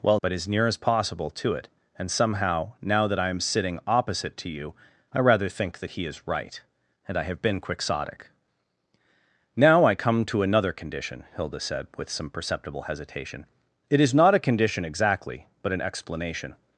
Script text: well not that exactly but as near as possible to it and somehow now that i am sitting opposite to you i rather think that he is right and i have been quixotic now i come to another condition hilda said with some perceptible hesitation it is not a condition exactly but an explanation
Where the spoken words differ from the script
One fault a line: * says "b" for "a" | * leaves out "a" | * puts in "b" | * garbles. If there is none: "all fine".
* leaves out "not that exactly"